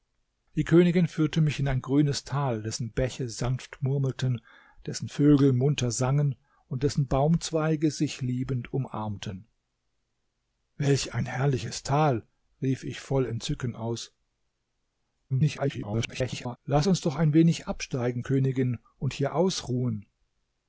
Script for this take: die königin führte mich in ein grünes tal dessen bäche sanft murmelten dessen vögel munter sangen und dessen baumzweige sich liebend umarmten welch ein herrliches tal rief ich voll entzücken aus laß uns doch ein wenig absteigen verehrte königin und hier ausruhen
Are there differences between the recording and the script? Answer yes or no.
yes